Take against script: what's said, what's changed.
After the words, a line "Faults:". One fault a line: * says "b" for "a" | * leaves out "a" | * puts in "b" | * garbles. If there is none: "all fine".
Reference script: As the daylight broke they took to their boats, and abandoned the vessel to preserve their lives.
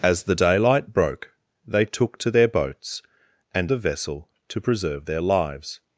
As the daylight broke they took to their boats, and the vessel to preserve their lives.
Faults:
* leaves out "abandoned"